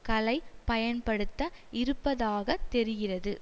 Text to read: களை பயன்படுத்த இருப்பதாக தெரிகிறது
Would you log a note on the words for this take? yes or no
no